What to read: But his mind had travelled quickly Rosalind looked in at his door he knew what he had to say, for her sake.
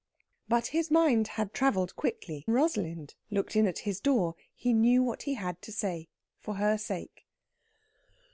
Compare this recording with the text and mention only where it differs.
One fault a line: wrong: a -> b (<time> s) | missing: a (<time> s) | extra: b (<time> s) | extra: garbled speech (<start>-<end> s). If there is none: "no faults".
no faults